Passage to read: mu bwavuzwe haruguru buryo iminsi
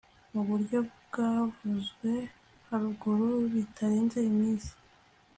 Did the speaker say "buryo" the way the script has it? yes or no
no